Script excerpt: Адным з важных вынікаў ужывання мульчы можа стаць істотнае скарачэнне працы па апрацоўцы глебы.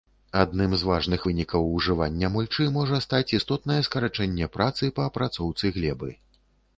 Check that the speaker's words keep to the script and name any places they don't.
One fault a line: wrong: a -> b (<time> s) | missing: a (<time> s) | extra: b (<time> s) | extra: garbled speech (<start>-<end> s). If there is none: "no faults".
no faults